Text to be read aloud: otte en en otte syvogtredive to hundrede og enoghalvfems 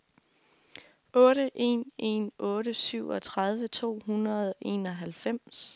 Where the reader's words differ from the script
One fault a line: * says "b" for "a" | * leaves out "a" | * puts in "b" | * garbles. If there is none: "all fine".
all fine